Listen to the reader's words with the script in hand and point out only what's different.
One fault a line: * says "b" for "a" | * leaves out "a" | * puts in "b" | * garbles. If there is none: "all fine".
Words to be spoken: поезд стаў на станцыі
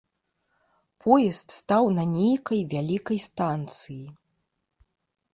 * puts in "нейкай вялікай"